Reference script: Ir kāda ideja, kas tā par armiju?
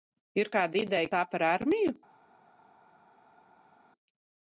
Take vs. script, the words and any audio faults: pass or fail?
fail